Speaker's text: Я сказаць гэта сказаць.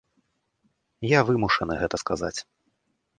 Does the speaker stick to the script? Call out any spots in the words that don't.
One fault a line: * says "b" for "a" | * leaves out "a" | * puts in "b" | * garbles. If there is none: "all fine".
* says "вымушаны" for "сказаць"